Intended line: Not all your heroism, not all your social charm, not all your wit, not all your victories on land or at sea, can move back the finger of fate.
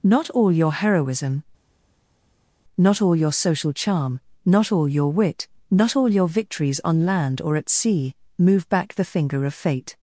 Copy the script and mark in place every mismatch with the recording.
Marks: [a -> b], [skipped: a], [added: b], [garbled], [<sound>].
Not all your heroism, not all your social charm, not all your wit, not all your victories on land or at sea, [skipped: can] move back the finger of fate.